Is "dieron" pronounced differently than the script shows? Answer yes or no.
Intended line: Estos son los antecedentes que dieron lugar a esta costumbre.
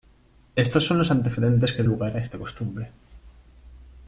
yes